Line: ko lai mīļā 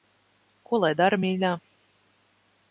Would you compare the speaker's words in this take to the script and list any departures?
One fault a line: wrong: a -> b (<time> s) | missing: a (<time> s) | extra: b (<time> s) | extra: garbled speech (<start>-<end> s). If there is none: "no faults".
extra: dara (1.0 s)